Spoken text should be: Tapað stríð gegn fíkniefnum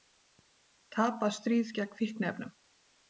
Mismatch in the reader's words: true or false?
false